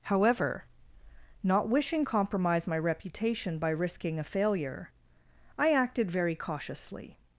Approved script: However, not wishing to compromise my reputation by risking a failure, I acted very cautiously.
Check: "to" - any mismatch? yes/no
yes